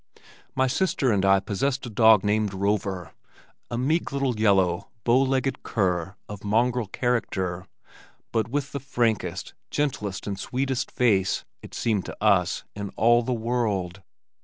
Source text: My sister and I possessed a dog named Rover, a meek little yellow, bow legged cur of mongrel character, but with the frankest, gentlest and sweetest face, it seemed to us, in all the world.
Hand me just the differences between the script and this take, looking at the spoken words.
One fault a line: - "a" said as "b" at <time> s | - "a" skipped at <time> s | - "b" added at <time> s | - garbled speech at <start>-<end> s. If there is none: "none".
none